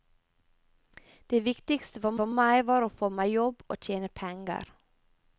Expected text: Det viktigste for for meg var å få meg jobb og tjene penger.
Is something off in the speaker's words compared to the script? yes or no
no